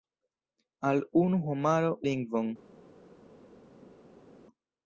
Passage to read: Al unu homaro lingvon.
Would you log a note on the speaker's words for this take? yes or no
no